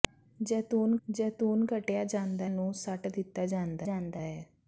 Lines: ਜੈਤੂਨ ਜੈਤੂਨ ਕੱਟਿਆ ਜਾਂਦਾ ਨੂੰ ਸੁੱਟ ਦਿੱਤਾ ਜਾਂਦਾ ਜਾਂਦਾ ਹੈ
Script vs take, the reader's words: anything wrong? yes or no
no